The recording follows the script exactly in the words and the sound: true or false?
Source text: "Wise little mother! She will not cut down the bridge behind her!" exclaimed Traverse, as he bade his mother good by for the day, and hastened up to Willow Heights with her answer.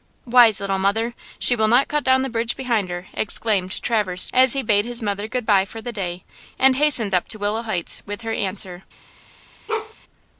false